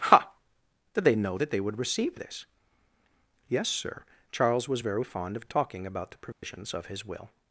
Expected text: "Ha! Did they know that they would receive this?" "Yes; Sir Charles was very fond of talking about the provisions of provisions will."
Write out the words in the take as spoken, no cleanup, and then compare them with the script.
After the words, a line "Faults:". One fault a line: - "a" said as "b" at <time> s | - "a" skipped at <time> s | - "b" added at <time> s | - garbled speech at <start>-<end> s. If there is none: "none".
"Ha! Did they know that they would receive this?" "Yes; Sir Charles was very fond of talking about the provisions of his will."
Faults:
- "provisions" said as "his" at 6.9 s